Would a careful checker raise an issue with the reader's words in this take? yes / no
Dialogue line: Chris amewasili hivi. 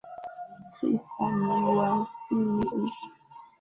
no